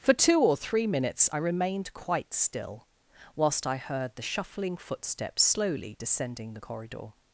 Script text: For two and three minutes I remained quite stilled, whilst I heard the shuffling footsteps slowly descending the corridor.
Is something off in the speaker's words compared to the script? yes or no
yes